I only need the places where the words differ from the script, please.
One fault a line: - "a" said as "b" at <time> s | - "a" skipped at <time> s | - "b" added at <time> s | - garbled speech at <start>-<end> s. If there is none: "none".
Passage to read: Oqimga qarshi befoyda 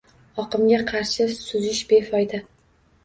- "suzish" added at 1.4 s